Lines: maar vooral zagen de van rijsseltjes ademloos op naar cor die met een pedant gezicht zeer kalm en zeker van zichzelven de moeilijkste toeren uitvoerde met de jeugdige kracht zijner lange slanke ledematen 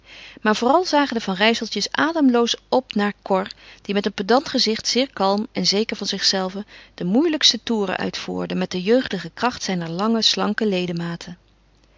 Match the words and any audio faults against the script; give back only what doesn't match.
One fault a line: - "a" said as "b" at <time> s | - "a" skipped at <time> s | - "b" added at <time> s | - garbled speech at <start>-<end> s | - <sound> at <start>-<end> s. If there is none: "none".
none